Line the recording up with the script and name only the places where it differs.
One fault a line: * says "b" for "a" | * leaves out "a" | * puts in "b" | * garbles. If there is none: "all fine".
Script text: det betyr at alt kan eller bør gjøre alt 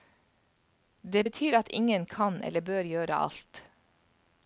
* says "ingen" for "alt"